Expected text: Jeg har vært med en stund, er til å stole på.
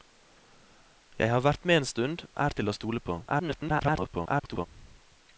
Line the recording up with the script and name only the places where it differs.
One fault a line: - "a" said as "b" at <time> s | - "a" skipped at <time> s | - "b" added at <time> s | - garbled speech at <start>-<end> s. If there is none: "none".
- garbled speech at 3.3-4.7 s